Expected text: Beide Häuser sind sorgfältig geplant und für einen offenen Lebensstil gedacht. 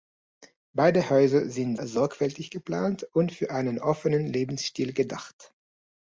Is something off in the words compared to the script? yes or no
no